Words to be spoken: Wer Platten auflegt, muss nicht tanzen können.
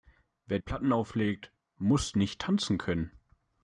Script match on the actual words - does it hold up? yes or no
yes